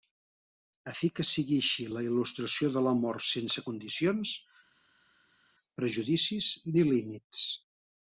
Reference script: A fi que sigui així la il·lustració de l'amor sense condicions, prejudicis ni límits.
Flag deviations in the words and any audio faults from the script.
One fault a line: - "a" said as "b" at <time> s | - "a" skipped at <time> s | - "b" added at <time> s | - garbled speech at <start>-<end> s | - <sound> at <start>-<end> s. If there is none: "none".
none